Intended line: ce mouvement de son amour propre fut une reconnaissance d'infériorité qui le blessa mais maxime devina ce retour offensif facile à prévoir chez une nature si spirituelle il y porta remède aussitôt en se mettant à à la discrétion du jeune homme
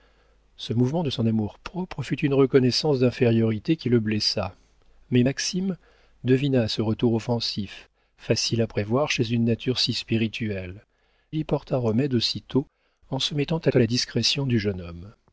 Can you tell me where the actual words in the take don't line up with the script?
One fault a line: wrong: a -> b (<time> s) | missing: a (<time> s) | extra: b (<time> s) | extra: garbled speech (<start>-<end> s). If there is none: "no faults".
no faults